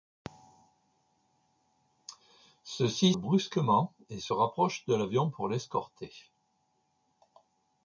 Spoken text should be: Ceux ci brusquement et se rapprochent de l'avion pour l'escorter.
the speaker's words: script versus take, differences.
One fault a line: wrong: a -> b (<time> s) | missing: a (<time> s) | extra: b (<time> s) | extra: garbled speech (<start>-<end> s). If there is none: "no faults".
no faults